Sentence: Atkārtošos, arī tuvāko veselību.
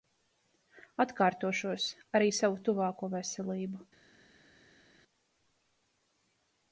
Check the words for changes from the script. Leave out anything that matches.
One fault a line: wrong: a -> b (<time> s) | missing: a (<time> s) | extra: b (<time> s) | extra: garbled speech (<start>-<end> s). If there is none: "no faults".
extra: savu (2.4 s)